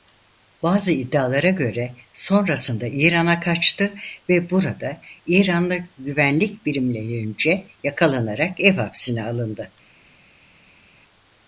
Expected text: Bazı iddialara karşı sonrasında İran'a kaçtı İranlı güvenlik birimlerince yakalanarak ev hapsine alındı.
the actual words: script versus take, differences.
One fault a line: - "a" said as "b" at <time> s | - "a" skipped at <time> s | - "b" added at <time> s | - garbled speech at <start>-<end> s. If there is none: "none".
- "karşı" said as "göre" at 1.5 s
- "ve burada" added at 4.3 s